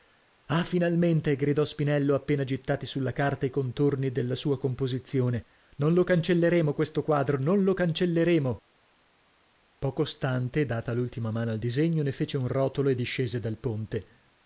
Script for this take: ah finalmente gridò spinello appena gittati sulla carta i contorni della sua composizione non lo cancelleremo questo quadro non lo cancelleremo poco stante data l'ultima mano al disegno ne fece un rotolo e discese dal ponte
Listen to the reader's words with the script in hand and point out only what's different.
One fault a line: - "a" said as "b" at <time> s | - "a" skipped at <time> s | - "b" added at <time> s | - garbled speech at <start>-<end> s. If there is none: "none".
none